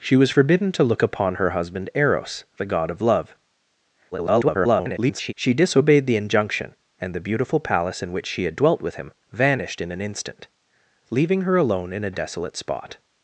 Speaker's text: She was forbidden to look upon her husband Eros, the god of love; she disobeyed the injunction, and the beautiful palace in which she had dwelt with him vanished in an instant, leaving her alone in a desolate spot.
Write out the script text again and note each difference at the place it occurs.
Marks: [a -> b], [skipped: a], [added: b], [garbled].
She was forbidden to look upon her husband Eros, the god of love; [garbled] she disobeyed the injunction, and the beautiful palace in which she had dwelt with him vanished in an instant, leaving her alone in a desolate spot.